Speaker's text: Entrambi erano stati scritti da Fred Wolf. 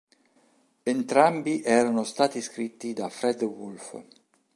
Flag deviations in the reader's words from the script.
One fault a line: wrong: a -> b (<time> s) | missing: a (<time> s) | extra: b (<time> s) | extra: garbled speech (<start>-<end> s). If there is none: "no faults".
no faults